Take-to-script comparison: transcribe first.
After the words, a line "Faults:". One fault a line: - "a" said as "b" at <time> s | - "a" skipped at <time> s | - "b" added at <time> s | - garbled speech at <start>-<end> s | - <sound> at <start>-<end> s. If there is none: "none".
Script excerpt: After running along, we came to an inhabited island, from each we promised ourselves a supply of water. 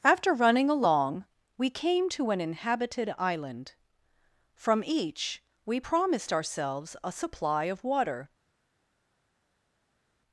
After running along, we came to an inhabited island, from each we promised ourselves a supply of water.
Faults:
none